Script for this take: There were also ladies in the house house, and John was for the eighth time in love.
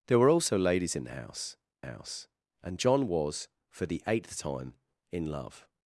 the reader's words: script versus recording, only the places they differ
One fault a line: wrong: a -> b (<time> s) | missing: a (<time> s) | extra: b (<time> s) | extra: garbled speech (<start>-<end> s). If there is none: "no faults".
no faults